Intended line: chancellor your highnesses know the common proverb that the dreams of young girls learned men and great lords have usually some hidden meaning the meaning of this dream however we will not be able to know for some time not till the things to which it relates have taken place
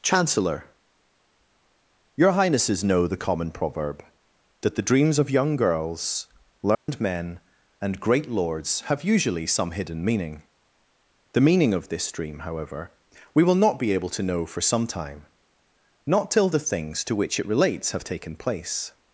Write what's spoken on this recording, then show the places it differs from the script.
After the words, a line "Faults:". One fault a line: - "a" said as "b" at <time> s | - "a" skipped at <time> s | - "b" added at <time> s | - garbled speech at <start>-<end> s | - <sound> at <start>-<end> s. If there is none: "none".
chancellor your highnesses know the common proverb that the dreams of young girls learned men and great lords have usually some hidden meaning the meaning of this dream however we will not be able to know for some time not till the things to which it relates have taken place
Faults:
- dropout at 6.7-6.9 s